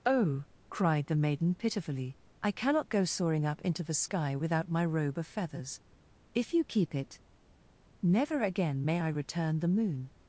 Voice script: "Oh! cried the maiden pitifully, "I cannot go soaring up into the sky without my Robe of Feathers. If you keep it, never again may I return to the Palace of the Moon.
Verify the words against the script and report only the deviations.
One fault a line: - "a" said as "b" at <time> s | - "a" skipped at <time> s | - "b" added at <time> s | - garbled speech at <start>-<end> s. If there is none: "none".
- "to the Palace of" skipped at 9.6 s